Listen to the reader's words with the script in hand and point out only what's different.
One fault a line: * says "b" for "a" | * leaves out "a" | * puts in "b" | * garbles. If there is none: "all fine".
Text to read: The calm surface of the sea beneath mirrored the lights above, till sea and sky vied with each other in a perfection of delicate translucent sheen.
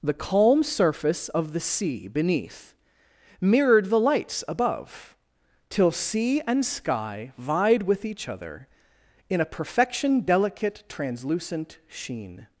* leaves out "of"